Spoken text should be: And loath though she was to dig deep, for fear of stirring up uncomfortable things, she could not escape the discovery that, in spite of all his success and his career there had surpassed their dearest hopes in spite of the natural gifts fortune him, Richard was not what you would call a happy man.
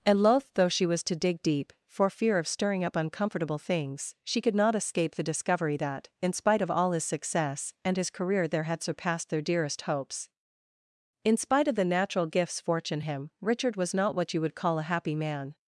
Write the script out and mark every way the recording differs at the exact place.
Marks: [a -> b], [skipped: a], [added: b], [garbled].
And loath though she was to dig deep, for fear of stirring up uncomfortable things, she could not escape the discovery that, in spite of all his success and his career there had surpassed their dearest hopes in spite of the natural gifts fortune him, Richard was not what you would call a happy man.